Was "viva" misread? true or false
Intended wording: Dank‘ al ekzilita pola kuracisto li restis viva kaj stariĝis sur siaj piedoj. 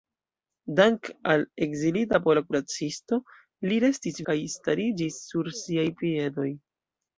true